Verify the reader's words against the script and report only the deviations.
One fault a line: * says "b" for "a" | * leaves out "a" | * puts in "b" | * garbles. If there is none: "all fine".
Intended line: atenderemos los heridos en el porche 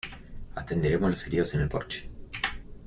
all fine